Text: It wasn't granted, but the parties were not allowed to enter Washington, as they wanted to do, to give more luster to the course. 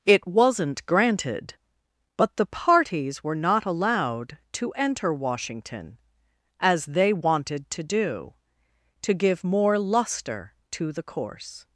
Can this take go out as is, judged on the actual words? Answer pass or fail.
pass